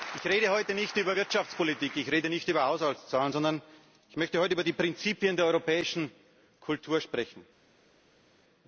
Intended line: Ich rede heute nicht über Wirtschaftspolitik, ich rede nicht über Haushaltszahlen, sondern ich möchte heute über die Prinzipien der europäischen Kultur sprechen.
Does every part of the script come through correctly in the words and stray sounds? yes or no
yes